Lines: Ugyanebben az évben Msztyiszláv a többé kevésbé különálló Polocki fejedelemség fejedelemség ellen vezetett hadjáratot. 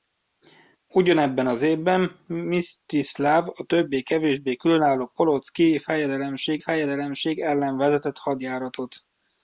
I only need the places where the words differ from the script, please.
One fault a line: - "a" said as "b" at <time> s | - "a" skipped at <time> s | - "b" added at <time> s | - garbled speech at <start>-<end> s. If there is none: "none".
none